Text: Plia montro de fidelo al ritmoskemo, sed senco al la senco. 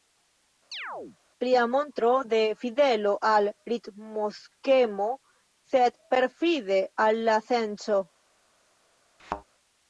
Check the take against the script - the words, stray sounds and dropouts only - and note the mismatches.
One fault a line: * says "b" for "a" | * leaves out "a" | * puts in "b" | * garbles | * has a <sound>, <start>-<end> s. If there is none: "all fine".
* has a chirp, 0.7-1.2 s
* says "perfide" for "senco"
* has a thud, 9.2-9.4 s